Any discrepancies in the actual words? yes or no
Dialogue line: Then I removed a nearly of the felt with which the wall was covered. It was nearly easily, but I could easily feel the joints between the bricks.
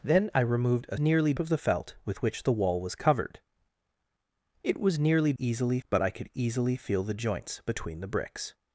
no